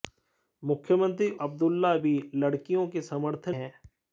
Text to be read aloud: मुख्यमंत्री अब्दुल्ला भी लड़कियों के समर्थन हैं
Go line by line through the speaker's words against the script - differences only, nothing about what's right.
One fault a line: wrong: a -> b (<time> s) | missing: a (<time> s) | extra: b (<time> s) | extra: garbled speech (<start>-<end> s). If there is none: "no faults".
no faults